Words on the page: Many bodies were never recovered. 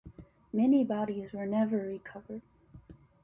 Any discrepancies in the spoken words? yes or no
no